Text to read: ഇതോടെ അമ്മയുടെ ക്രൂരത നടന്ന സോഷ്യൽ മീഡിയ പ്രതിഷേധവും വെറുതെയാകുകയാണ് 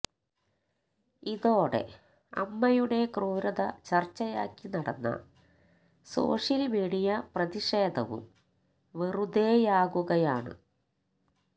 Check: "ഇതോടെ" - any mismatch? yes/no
no